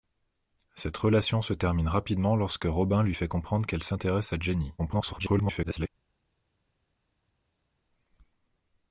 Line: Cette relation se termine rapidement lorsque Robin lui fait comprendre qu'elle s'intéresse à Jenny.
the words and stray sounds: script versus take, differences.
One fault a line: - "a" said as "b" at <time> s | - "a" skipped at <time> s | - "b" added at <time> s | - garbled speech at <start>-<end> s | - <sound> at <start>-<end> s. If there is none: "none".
- garbled speech at 4.8-5.9 s